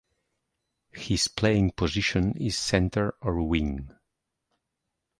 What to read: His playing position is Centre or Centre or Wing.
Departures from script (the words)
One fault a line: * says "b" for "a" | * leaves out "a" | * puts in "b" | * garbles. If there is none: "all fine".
* leaves out "Centre or"